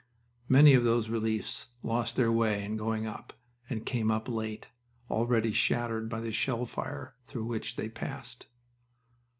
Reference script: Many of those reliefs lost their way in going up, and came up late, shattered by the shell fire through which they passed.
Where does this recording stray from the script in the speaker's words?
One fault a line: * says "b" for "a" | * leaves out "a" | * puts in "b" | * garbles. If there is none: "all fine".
* puts in "already"